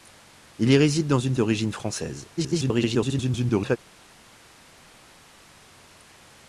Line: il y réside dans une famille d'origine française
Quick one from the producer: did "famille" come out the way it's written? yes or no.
no